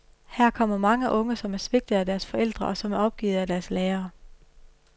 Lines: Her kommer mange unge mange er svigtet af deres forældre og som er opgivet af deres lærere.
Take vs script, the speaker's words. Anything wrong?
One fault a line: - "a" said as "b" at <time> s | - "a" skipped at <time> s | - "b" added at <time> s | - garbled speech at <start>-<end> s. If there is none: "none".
- "mange" said as "som" at 1.4 s